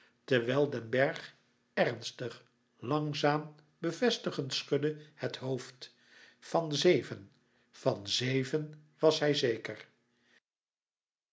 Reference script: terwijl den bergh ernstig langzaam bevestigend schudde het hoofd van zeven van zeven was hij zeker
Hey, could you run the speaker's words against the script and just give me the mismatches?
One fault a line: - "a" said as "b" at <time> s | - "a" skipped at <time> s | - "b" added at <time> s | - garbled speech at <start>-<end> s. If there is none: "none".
none